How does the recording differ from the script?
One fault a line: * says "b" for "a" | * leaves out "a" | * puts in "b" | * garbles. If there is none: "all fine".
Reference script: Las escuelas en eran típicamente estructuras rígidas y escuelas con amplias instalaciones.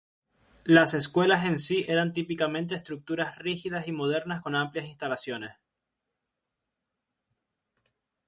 * puts in "sí"
* says "modernas" for "escuelas"